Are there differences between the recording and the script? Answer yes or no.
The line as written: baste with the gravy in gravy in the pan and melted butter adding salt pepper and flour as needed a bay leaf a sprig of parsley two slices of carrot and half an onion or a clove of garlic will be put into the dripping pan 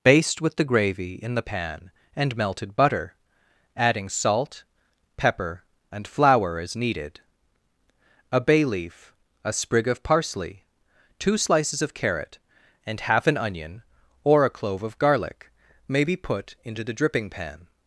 yes